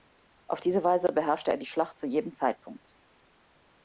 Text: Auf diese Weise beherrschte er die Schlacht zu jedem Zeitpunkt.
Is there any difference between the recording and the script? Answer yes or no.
no